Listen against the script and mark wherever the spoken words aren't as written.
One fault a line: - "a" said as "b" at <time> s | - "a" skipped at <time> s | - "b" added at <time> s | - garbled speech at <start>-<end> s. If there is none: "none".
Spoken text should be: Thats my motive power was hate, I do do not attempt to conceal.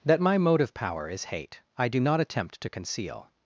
- "Thats" said as "That" at 0.0 s
- "was" said as "is" at 1.1 s
- "do" skipped at 2.0 s